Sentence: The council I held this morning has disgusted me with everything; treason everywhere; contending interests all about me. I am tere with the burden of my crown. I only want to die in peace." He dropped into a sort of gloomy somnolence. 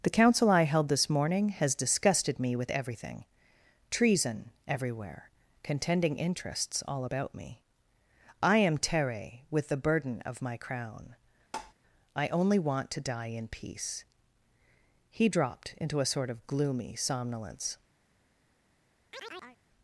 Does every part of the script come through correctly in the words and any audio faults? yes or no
no